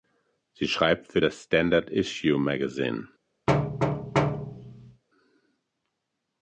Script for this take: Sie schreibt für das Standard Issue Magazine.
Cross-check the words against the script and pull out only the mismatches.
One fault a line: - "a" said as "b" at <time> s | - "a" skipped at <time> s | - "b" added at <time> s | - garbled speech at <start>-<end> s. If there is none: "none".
none